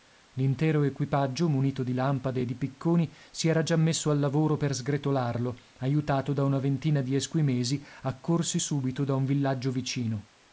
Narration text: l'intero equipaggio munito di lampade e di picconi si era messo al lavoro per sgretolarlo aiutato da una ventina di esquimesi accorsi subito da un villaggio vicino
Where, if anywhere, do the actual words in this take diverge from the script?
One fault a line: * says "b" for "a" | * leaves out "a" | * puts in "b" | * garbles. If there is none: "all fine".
* puts in "già"